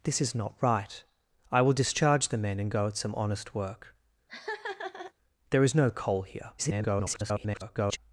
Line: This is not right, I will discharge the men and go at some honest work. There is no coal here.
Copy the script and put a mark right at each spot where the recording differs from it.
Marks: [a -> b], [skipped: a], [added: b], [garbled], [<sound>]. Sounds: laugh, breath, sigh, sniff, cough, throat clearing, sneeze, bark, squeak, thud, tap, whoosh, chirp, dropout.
This is not right, I will discharge the men and go at some honest work. [laugh] There is no coal here. [garbled]